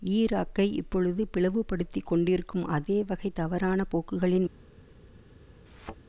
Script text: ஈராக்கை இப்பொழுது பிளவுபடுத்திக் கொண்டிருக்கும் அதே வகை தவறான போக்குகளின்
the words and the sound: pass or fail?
fail